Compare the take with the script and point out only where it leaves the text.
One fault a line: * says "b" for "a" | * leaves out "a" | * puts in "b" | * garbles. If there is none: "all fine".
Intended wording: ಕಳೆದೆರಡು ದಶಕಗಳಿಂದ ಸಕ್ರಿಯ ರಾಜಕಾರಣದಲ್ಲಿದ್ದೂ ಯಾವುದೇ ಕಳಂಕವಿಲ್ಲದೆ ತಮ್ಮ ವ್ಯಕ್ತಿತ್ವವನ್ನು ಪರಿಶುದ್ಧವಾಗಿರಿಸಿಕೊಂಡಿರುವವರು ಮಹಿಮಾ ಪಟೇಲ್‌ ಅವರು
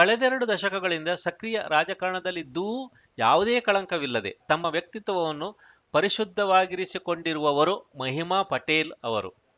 all fine